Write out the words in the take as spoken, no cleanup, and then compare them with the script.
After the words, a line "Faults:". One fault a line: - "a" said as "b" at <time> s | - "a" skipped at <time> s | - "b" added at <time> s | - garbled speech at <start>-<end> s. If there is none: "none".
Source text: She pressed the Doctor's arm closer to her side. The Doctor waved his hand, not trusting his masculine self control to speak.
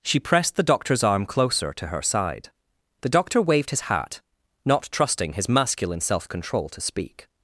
She pressed the Doctor's arm closer to her side. The Doctor waved his hat, not trusting his masculine self control to speak.
Faults:
- "hand" said as "hat" at 3.8 s